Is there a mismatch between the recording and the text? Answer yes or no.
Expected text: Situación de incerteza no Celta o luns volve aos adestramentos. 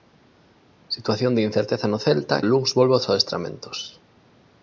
no